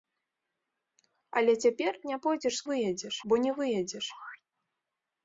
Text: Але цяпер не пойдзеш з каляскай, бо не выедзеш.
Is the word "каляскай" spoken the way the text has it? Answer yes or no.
no